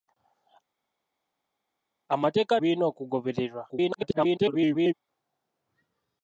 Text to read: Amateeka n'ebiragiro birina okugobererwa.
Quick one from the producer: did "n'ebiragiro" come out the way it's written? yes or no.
no